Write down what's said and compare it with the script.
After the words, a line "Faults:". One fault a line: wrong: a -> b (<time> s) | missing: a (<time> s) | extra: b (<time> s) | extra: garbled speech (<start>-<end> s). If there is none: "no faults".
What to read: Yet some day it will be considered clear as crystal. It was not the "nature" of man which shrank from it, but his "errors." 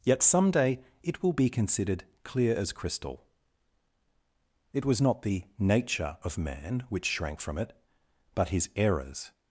Yet some day it will be considered clear as crystal. It was not the "nature" of man which shrank from it, but his "errors."
Faults:
no faults